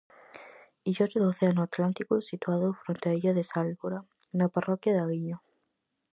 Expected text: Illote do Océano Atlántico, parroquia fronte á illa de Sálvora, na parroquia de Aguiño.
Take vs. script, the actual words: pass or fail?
fail